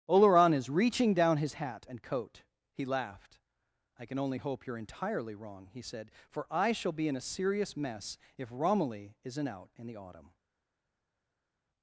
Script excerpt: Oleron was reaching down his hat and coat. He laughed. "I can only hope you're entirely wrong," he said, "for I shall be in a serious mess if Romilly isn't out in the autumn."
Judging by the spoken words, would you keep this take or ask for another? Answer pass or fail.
fail